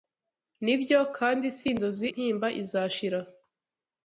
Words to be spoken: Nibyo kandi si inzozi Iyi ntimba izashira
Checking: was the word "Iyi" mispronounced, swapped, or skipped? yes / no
yes